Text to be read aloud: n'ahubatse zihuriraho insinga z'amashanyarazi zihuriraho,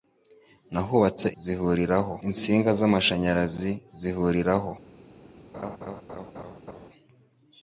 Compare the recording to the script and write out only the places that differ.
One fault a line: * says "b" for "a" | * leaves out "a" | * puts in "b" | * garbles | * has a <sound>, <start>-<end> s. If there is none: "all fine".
* has a laugh, 5.5-6.9 s